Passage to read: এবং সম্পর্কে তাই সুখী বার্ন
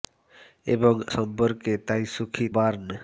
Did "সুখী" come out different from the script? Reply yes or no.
no